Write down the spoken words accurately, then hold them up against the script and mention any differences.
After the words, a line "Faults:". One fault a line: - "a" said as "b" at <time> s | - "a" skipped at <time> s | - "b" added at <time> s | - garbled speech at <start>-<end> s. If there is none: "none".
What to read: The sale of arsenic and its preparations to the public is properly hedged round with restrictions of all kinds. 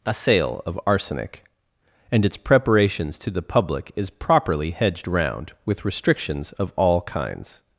A sale of arsenic and its preparations to the public is properly hedged round with restrictions of all kinds.
Faults:
- "The" said as "A" at 0.0 s